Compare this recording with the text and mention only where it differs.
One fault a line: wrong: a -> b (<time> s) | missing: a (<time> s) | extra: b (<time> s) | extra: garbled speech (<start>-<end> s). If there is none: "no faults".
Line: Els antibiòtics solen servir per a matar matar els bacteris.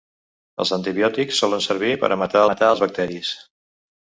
no faults